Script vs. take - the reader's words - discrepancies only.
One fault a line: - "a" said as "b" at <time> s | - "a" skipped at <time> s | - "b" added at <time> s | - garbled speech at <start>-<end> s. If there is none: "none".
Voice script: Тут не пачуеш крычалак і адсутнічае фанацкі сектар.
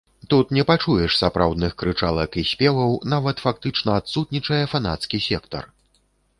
- "сапраўдных" added at 1.2 s
- "спеваў нават фактычна" added at 2.5 s